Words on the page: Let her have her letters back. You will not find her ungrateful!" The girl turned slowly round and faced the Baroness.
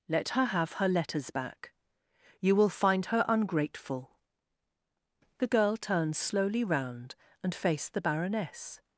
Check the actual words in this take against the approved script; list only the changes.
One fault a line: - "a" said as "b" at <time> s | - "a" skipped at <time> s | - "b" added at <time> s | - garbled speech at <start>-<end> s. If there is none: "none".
- "not" skipped at 2.7 s